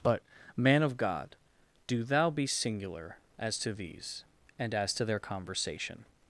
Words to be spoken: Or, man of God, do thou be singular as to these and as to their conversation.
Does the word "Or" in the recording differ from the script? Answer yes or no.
yes